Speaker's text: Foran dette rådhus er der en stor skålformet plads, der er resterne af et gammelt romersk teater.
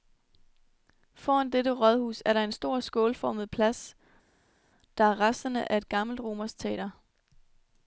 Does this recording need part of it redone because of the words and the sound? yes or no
no